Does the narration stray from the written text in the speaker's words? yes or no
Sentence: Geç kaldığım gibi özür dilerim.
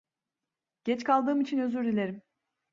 yes